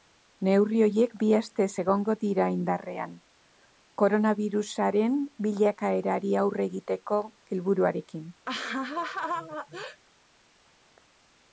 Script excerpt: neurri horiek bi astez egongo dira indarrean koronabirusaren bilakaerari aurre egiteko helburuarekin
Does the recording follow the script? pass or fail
pass